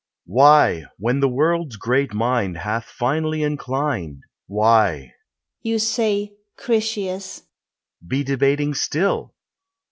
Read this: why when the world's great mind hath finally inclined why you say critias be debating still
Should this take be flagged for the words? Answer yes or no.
no